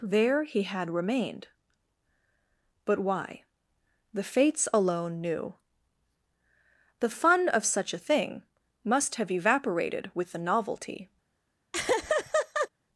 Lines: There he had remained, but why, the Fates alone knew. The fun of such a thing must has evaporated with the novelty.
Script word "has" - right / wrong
wrong